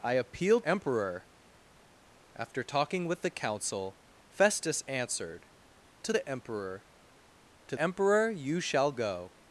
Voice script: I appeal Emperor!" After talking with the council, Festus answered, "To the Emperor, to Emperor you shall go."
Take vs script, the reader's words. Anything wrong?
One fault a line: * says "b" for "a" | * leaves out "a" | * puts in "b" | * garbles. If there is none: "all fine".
all fine